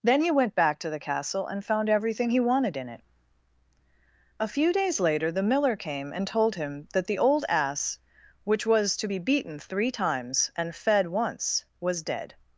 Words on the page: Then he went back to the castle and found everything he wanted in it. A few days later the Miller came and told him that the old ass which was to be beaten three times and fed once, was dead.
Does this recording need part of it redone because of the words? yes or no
no